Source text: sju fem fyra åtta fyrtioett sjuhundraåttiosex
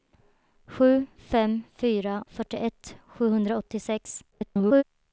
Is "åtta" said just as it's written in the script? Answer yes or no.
no